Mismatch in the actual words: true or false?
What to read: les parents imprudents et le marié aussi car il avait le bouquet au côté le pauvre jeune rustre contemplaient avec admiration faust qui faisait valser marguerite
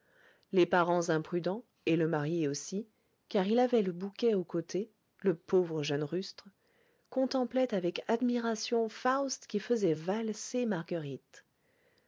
false